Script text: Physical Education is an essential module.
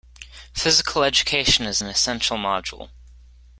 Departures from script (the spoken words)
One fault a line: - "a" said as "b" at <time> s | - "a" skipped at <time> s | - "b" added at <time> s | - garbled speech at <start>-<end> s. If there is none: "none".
none